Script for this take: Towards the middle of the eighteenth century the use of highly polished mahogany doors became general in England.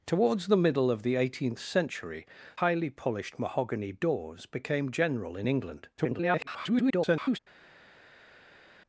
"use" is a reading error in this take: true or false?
true